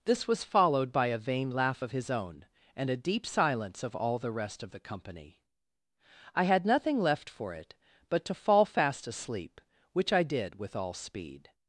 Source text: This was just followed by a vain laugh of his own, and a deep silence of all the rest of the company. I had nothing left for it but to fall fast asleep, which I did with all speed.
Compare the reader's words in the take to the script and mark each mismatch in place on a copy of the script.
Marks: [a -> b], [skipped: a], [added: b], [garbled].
This was [skipped: just] followed by a vain laugh of his own, and a deep silence of all the rest of the company. I had nothing left for it but to fall fast asleep, which I did with all speed.